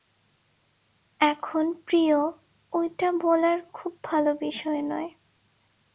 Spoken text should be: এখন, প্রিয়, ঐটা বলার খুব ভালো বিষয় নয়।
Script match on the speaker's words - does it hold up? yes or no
yes